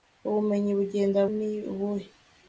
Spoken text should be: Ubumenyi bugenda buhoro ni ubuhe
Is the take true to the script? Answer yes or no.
no